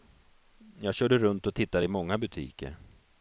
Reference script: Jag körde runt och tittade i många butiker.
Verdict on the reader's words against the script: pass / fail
pass